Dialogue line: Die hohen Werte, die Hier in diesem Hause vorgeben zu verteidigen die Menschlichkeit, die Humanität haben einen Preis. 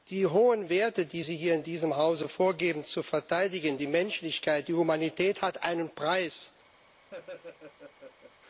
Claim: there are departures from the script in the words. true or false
true